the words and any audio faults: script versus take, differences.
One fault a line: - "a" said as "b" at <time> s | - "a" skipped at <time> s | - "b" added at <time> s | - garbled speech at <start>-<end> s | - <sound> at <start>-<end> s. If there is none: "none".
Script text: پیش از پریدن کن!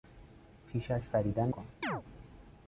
- chirp at 1.8-2.0 s